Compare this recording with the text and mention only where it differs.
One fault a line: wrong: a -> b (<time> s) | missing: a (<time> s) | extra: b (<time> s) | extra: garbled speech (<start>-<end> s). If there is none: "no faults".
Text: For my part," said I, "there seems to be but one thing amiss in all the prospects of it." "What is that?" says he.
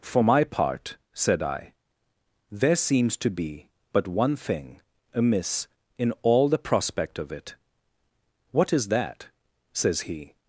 wrong: prospects -> prospect (6.6 s)